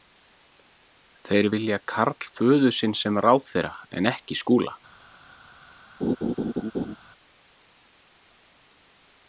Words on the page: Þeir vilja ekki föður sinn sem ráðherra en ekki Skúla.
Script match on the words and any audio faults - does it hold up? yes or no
no